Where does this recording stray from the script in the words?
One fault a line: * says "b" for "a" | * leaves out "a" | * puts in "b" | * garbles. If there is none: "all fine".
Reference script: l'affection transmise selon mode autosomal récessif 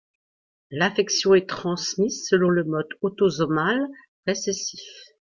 * puts in "est"
* puts in "le"